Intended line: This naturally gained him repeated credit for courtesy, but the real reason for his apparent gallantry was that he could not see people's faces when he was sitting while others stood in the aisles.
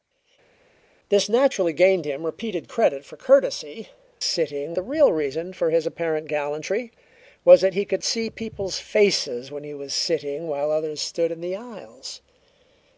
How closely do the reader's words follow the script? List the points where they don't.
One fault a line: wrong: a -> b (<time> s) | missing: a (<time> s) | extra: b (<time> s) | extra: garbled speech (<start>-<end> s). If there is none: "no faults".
wrong: but -> sitting (4.2 s)
missing: not (8.0 s)